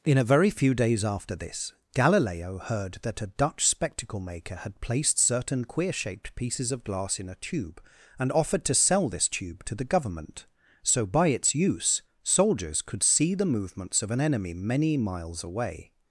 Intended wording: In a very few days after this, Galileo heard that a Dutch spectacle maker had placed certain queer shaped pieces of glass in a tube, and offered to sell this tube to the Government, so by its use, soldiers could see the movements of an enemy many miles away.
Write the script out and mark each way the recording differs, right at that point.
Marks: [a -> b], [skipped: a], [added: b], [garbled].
In a very few days after this, Galileo heard that a Dutch spectacle maker had placed certain queer shaped pieces of glass in a tube, and offered to sell this tube to the Government, so by its use, soldiers could see the movements of an enemy many miles away.